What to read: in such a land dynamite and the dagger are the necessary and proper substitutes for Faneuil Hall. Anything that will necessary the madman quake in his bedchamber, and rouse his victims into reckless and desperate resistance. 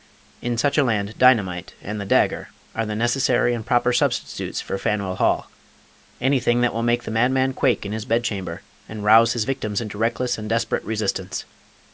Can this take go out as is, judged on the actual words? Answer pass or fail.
fail